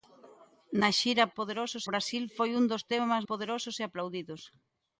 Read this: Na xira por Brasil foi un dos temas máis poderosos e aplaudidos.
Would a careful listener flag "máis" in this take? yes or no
yes